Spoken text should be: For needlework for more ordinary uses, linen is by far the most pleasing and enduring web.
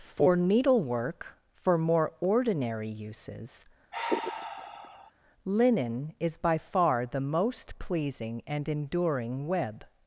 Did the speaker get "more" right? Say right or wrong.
right